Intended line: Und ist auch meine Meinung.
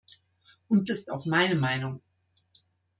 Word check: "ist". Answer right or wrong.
right